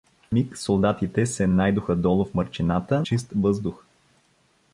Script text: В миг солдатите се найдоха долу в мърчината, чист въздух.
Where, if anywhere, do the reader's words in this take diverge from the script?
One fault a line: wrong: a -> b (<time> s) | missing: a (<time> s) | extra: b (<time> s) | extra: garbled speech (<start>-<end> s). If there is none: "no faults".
no faults